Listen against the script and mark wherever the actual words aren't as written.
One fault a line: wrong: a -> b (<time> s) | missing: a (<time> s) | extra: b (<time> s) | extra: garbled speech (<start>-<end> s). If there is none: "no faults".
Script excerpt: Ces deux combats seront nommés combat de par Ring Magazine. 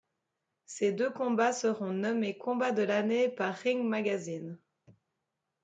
extra: l'année (2.8 s)